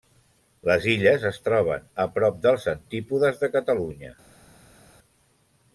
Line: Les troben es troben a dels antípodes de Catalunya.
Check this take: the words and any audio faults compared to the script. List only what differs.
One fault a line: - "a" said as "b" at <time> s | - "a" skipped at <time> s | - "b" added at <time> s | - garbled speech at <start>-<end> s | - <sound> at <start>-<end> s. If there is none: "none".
- "troben" said as "illes" at 0.9 s
- "prop" added at 2.1 s